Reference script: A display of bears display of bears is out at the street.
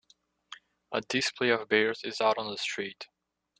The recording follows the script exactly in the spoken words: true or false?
false